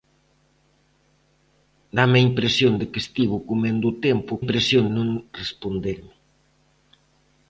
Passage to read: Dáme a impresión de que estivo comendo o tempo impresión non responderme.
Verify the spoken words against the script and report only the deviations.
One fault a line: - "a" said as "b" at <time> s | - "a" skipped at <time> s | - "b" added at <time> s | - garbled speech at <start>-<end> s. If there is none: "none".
none